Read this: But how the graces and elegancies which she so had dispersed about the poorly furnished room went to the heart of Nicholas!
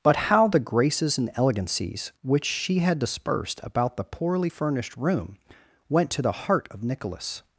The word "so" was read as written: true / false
false